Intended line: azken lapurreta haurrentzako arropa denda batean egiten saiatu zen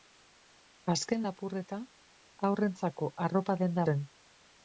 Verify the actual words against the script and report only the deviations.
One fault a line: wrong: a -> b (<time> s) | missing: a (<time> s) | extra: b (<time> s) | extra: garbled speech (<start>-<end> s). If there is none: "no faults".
missing: batean egiten saiatu (3.9 s)